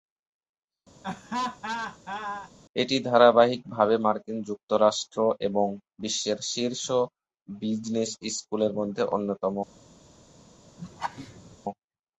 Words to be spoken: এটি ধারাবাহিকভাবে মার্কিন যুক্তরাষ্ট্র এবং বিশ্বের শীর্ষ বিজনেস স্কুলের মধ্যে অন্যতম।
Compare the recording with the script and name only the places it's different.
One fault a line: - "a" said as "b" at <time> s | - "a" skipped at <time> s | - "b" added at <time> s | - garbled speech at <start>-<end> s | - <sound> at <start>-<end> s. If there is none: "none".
- laugh at 1.0-2.5 s
- laugh at 10.8-11.6 s